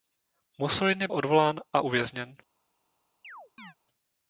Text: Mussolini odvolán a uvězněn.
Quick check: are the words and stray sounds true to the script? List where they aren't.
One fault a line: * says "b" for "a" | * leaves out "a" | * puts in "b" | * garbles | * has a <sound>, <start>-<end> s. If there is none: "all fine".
* has a chirp, 3.2-3.7 s